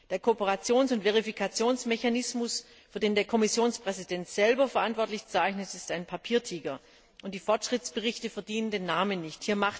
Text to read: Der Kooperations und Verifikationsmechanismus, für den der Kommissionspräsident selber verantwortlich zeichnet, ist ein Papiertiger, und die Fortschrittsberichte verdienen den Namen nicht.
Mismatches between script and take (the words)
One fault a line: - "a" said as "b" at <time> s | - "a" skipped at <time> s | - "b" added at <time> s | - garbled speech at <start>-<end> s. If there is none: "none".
none